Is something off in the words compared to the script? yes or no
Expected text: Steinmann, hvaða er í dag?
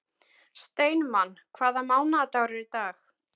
yes